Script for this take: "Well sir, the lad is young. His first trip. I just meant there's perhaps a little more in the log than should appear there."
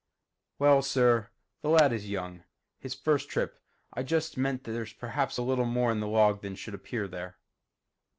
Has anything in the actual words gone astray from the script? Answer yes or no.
no